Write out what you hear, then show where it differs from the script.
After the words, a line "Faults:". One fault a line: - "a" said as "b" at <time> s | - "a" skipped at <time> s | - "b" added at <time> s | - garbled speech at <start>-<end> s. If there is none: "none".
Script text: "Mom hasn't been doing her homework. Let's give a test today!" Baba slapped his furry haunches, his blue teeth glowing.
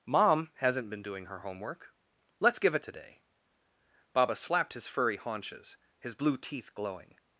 "Mom hasn't been doing her homework. Let's give a today!" Baba slapped his furry haunches, his blue teeth glowing.
Faults:
- "test" skipped at 2.8 s